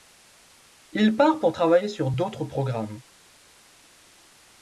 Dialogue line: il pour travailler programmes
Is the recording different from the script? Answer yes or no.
yes